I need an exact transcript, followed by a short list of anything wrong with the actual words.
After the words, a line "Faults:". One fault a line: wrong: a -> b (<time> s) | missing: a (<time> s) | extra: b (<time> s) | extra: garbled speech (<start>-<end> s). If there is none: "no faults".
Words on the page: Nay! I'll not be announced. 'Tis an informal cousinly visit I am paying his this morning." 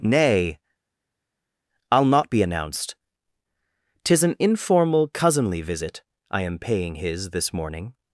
Nay! I'll not be announced. 'Tis an informal cousinly visit I am paying his this morning."
Faults:
no faults